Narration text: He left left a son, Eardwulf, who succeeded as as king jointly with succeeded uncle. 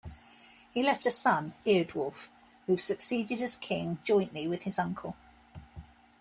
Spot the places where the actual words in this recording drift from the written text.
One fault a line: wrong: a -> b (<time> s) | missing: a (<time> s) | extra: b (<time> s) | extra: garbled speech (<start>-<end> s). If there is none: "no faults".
missing: left (1.1 s)
missing: as (3.6 s)
wrong: succeeded -> his (4.6 s)